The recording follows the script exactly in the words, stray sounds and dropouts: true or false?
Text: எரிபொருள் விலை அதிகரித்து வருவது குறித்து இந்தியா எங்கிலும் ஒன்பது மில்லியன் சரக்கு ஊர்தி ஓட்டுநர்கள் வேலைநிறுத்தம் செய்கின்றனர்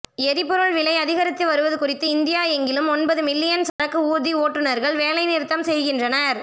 false